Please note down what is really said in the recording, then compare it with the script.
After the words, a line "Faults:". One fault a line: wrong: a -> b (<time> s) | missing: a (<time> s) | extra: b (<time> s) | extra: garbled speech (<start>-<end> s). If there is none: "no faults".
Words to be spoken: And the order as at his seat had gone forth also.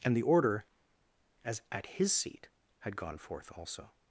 And the order as at his seat had gone forth also.
Faults:
no faults